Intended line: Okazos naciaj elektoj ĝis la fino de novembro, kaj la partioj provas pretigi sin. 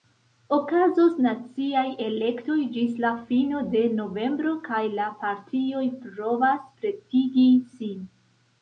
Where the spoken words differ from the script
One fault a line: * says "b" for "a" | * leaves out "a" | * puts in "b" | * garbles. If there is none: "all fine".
all fine